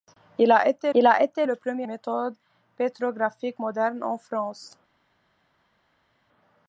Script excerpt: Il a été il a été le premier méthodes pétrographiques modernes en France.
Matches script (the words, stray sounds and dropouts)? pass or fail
pass